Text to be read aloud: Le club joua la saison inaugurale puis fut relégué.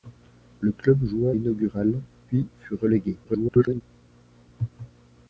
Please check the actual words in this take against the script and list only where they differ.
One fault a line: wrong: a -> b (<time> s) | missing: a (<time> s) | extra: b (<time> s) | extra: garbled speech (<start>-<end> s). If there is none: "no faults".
missing: la saison (1.4 s)
extra: garbled speech (3.2-3.8 s)